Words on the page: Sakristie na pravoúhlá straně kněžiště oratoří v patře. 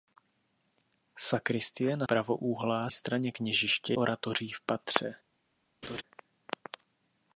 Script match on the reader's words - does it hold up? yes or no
yes